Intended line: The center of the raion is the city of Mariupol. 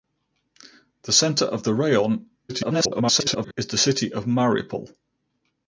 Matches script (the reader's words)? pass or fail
fail